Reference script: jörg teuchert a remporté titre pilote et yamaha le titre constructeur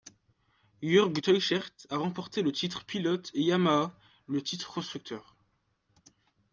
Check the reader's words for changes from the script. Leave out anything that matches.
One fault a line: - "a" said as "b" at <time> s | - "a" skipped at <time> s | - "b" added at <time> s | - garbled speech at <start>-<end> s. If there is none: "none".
- "le" added at 2.4 s